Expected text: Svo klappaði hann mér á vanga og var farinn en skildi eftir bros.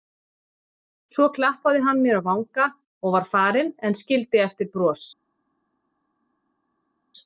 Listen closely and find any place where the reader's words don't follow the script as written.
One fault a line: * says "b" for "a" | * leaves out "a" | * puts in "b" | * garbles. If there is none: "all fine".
all fine